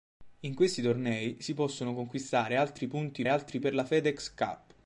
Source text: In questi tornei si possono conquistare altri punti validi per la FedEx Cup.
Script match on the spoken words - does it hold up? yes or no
no